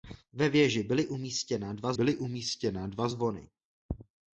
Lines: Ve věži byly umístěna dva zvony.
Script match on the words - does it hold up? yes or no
no